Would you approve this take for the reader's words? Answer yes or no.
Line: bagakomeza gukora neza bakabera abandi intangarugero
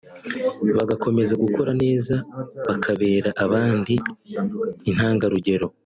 yes